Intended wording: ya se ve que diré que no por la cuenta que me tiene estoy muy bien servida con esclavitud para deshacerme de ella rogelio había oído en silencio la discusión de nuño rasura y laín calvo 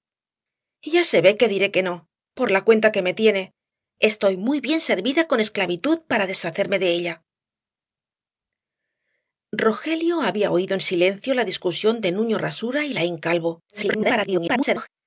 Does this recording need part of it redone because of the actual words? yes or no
yes